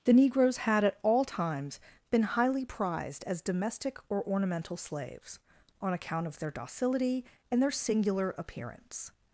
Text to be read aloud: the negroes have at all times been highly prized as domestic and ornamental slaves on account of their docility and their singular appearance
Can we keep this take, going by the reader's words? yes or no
no